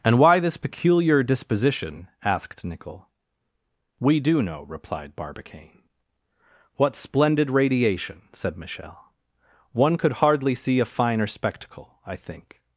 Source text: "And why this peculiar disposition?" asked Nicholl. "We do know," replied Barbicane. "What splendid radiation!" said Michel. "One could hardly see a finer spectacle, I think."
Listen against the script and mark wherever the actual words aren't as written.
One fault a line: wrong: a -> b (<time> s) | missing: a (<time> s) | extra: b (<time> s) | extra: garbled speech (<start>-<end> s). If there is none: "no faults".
no faults